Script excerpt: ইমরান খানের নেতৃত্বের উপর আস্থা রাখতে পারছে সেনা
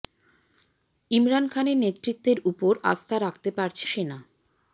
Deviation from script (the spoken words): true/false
false